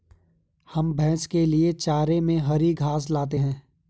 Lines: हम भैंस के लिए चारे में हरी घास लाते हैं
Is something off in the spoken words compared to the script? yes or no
no